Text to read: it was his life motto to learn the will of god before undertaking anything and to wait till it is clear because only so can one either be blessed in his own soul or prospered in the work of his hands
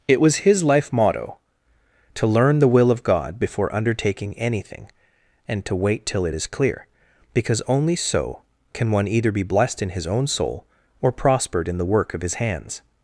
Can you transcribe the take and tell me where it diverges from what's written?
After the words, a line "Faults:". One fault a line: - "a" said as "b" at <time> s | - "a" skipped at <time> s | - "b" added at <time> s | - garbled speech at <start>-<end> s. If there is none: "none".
it was his life motto to learn the will of god before undertaking anything and to wait till it is clear because only so can one either be blessed in his own soul or prospered in the work of his hands
Faults:
none